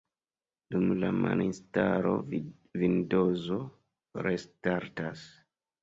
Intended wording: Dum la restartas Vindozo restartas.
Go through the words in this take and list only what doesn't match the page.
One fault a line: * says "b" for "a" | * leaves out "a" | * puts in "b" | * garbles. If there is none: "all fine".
* says "malinstalo" for "restartas"